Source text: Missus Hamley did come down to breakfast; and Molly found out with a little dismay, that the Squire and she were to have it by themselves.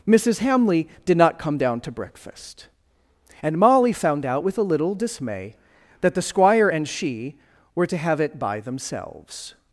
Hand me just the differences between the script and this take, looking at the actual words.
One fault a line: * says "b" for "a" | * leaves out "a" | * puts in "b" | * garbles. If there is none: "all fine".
* puts in "not"